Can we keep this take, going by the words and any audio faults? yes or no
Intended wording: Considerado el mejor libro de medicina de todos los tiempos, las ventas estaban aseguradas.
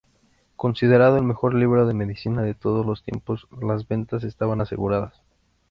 yes